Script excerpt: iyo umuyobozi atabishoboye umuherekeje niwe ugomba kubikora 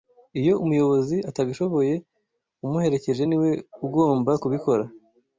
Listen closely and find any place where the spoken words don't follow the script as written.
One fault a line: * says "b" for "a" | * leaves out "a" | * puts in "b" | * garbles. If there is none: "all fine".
all fine